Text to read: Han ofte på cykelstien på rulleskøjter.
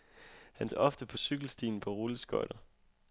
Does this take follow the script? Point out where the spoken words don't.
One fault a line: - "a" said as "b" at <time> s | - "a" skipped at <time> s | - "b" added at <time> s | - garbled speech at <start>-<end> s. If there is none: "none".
none